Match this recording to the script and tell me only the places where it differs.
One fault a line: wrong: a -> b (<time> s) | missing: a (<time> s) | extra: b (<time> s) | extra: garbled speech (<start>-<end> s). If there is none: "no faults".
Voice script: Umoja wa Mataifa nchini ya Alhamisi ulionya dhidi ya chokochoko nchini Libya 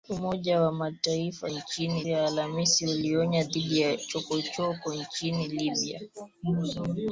no faults